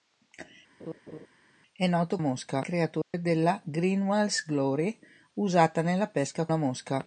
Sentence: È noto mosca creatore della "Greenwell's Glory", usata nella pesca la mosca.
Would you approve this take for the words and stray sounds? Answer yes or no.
no